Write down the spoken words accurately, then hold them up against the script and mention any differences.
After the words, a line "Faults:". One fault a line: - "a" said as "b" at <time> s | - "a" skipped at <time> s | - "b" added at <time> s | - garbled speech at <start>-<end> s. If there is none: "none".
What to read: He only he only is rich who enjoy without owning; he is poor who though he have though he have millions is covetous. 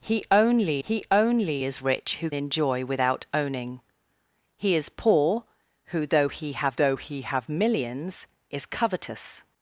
He only he only is rich who enjoy without owning; he is poor who though he have though he have millions is covetous.
Faults:
none